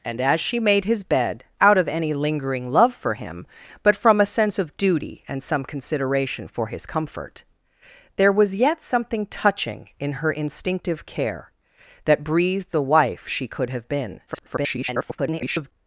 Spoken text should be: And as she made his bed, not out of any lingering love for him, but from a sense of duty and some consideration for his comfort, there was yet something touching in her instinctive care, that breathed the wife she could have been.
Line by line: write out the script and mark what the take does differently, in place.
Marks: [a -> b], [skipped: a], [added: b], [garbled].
And as she made his bed, [skipped: not] out of any lingering love for him, but from a sense of duty and some consideration for his comfort, there was yet something touching in her instinctive care, that breathed the wife she could have been. [garbled]